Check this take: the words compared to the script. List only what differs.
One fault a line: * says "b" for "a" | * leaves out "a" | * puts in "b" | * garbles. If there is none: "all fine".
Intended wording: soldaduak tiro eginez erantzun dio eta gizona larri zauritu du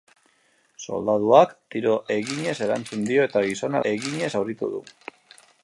* says "eginez" for "larri"